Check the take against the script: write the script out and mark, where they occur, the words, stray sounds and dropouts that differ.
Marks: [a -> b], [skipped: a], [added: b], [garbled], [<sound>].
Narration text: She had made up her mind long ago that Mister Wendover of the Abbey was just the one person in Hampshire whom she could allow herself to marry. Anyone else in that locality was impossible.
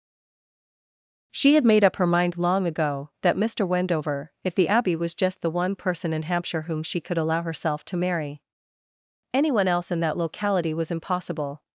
She had made up her mind long ago that Mister Wendover [of -> if] the Abbey was just the one person in Hampshire whom she could allow herself to marry. Anyone else in that locality was impossible.